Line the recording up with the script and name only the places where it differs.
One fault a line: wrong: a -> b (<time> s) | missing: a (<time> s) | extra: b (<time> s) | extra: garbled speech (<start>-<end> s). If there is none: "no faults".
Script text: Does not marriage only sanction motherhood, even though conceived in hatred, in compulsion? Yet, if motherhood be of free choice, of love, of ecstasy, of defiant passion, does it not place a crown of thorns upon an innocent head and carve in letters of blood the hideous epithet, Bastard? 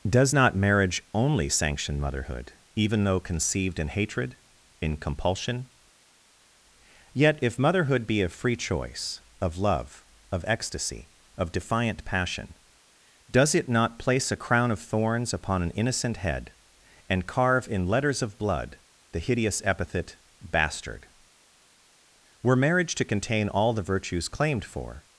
extra: Were marriage to contain all the virtues claimed for (22.4 s)